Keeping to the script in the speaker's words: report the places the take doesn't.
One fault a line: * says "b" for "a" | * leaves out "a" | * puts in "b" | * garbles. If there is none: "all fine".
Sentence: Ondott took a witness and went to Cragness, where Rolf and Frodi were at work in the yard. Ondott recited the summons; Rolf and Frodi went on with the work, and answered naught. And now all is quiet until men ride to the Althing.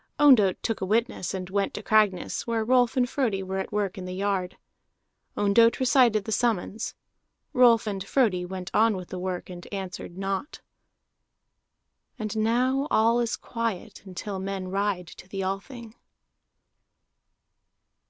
all fine